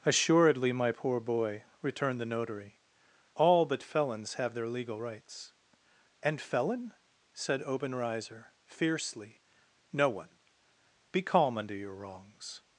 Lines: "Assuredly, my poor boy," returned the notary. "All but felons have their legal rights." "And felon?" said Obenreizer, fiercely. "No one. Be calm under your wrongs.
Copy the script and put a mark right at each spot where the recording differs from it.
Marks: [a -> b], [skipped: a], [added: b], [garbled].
"Assuredly, my poor boy," returned the notary. "All but felons have their legal rights." "And felon?" said Obenreizer, fiercely. "No one. Be calm under your wrongs.